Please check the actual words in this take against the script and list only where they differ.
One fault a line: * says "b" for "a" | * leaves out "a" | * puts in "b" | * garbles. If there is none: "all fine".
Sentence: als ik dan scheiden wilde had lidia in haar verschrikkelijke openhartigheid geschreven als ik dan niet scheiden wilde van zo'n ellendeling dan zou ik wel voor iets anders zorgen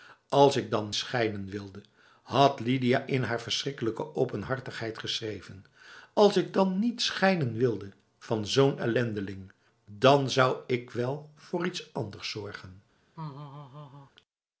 all fine